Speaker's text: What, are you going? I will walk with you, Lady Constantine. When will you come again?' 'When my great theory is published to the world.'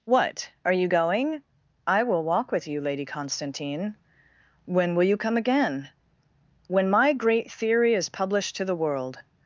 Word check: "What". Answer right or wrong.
right